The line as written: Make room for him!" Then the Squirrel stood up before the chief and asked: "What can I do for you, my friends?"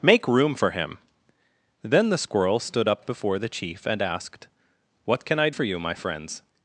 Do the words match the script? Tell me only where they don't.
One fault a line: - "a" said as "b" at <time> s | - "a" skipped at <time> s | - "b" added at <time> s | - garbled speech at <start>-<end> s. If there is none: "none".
- "do" skipped at 5.5 s